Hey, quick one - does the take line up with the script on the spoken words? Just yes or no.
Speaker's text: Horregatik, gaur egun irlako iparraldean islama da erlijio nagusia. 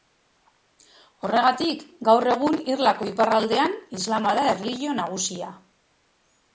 yes